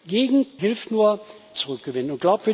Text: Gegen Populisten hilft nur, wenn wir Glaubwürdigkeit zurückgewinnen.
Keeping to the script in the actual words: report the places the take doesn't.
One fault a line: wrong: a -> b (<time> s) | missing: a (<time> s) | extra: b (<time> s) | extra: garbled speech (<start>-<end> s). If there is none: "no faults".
missing: Populisten (0.6 s)
missing: wenn wir Glaubwürdigkeit (1.2 s)